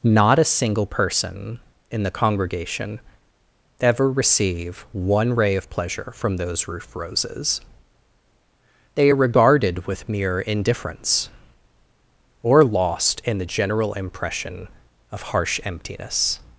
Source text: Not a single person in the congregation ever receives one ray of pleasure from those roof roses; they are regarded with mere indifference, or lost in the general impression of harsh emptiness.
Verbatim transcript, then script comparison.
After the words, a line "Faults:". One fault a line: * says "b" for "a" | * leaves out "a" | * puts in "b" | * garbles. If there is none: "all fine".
Not a single person in the congregation ever receive one ray of pleasure from those roof roses; they are regarded with mere indifference, or lost in the general impression of harsh emptiness.
Faults:
* says "receive" for "receives"